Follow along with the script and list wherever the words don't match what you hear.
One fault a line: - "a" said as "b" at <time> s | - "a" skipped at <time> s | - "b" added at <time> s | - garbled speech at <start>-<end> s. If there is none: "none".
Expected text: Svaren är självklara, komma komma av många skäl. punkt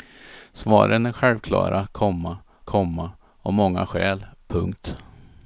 none